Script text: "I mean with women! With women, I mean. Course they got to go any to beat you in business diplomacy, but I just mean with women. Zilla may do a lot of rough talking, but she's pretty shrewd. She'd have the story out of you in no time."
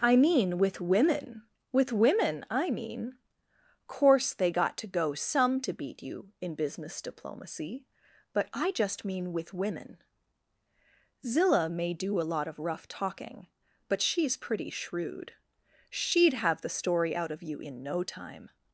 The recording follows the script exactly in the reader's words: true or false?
false